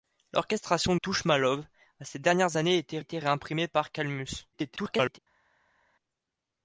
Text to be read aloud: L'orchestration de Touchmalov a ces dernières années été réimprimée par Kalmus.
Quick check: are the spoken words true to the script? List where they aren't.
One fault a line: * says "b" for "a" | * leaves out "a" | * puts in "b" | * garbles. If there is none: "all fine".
* leaves out "de"
* puts in "été"
* garbles